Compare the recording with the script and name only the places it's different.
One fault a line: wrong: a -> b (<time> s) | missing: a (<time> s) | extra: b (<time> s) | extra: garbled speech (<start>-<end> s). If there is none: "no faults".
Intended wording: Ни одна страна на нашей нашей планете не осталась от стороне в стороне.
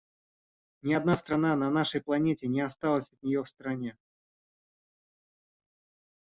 missing: нашей (2.0 s)
wrong: стороне -> нее (3.2 s)